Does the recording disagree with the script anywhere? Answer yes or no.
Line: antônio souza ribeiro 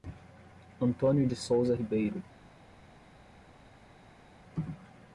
yes